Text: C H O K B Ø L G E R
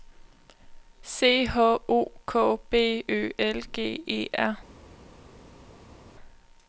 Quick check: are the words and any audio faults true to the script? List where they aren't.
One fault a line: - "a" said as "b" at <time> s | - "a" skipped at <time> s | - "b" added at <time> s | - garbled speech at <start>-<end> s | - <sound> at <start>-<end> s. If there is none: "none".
none